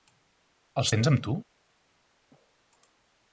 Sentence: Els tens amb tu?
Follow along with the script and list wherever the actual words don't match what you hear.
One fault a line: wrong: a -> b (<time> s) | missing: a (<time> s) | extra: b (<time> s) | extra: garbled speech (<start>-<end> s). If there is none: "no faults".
no faults